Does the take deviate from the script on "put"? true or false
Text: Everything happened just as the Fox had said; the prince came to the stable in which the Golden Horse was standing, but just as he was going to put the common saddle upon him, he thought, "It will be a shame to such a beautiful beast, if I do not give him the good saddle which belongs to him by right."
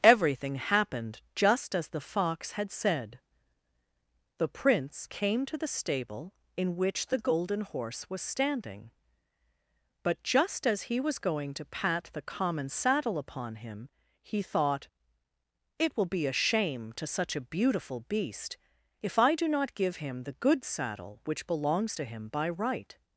true